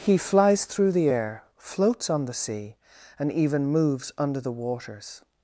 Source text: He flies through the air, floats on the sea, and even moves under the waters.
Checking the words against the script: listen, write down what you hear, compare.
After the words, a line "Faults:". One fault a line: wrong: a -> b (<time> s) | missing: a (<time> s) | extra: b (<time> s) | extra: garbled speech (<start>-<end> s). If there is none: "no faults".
He flies through the air, floats on the sea, and even moves under the waters.
Faults:
no faults